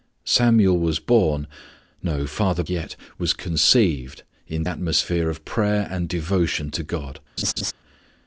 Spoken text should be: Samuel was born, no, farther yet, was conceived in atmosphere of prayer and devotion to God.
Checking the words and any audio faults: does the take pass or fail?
fail